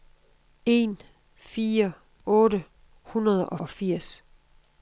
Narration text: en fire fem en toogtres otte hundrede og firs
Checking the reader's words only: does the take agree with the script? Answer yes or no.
no